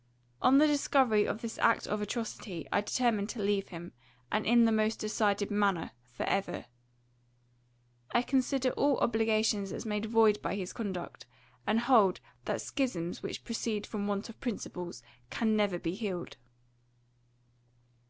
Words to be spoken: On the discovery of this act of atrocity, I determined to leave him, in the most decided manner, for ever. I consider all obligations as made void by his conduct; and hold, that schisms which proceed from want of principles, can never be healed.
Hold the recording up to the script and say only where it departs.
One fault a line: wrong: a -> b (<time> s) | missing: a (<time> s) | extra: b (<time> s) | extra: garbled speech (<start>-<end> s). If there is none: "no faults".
extra: and (4.3 s)